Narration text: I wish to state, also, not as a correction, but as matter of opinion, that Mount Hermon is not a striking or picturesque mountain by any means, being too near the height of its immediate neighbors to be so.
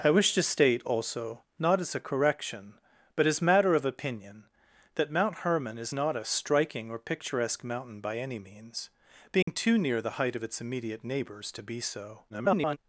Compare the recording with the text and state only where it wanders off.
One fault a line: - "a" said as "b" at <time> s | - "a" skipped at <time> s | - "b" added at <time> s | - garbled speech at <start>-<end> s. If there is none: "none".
- garbled speech at 12.3-12.8 s